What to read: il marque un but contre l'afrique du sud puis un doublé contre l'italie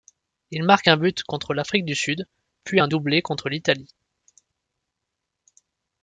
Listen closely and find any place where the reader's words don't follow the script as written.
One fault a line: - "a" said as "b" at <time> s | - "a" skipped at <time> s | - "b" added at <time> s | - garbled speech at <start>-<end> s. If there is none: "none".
none